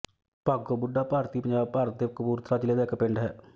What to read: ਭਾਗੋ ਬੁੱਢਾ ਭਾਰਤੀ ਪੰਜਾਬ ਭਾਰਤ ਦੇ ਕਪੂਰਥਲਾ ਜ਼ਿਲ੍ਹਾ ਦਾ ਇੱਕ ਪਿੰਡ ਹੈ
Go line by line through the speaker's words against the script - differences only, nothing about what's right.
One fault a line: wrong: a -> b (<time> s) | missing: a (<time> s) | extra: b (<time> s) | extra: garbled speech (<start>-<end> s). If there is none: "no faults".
no faults